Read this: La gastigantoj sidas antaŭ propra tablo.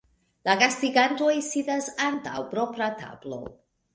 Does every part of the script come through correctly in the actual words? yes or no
yes